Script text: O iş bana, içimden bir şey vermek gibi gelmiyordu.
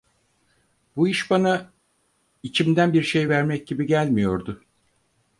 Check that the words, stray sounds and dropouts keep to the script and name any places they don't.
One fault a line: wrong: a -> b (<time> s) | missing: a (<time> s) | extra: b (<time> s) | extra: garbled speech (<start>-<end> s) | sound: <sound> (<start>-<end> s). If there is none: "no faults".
wrong: O -> Bu (0.9 s)